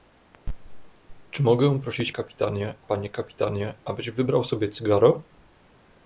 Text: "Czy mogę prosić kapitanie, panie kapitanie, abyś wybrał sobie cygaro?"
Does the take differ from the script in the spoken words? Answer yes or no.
no